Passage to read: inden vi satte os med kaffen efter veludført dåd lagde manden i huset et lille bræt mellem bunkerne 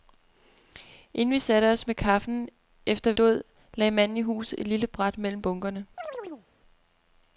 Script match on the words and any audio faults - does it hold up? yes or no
no